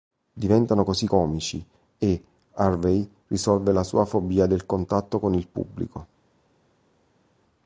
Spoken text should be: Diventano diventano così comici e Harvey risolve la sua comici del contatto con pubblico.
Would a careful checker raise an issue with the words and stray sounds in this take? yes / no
yes